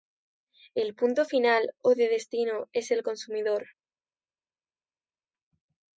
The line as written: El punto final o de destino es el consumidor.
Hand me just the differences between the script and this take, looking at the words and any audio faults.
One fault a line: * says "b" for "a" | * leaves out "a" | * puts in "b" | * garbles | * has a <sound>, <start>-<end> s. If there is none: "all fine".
all fine